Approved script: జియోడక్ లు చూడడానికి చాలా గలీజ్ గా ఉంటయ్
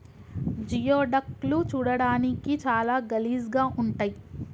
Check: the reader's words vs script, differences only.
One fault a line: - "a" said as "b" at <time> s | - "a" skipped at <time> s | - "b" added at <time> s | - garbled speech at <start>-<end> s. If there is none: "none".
none